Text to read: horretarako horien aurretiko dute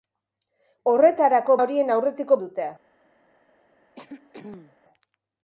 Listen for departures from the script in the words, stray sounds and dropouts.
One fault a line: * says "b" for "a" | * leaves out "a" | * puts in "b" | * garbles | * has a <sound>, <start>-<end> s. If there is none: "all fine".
* has a throat clearing, 3.9-4.8 s